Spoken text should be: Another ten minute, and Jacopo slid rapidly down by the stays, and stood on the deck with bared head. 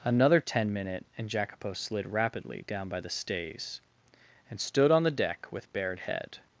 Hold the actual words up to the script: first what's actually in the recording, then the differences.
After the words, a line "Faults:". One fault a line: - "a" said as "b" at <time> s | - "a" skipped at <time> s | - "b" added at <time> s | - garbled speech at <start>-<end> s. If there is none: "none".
Another ten minute, and Jacopo slid rapidly down by the stays, and stood on the deck with bared head.
Faults:
none